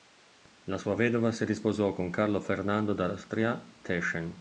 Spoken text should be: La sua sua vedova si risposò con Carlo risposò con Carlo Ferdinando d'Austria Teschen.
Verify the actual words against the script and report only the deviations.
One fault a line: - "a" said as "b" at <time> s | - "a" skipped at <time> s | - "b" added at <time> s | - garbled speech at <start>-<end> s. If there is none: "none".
- "sua" skipped at 0.9 s
- "risposò con Carlo" skipped at 2.4 s